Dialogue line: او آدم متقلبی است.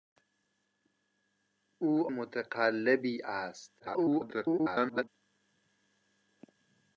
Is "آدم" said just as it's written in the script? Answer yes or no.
no